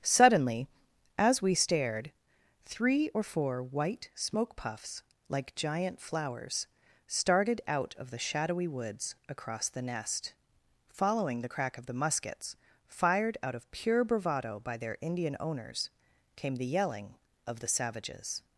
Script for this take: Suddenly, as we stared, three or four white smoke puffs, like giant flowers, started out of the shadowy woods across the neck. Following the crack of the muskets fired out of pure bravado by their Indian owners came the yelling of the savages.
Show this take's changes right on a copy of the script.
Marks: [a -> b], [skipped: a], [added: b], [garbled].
Suddenly, as we stared, three or four white smoke puffs, like giant flowers, started out of the shadowy woods across the [neck. -> nest] Following the crack of the muskets fired out of pure bravado by their Indian owners came the yelling of the savages.